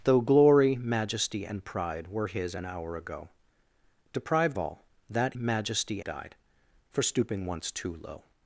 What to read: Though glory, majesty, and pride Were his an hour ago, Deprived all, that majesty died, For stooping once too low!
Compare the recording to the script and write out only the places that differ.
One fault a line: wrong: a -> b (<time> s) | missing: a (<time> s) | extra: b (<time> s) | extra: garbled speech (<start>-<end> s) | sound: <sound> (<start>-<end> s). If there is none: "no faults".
no faults